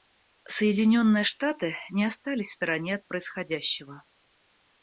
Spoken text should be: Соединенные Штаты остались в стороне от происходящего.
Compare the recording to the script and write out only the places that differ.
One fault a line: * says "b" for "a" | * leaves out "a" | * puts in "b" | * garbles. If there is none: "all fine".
* puts in "не"